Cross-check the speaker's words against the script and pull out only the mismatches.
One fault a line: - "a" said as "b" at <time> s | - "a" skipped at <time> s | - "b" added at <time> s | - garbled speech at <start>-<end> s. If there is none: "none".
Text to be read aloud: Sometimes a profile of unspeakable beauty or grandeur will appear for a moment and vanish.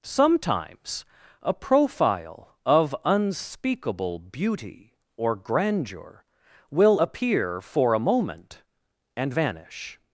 none